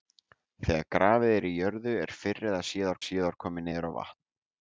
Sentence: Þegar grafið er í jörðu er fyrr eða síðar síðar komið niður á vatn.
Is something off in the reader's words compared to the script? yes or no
no